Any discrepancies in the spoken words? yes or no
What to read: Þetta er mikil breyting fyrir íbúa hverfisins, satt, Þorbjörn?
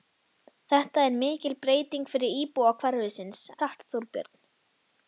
no